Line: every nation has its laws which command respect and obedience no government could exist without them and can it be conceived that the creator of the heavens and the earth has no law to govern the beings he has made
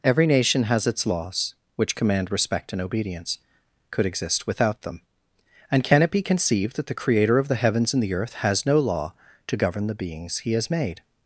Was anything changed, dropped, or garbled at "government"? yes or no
yes